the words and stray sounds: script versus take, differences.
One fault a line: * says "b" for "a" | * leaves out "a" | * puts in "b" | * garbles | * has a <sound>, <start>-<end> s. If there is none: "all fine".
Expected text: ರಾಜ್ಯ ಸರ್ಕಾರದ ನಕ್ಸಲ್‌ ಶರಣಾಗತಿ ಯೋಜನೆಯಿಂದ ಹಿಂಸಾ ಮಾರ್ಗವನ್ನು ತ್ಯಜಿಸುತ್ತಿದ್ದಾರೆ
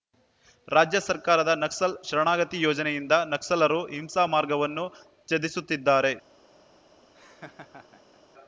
* puts in "ನಕ್ಸಲರು"
* has a laugh, 7.1-8.2 s